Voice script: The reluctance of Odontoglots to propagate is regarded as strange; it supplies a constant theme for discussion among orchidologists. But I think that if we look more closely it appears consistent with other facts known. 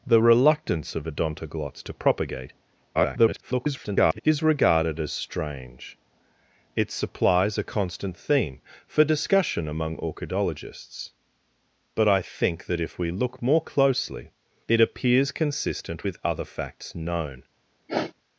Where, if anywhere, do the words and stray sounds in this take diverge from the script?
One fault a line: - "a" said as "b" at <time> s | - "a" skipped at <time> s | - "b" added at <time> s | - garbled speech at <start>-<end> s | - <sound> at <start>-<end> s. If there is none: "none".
- garbled speech at 2.9-4.2 s
- sniff at 17.9-18.1 s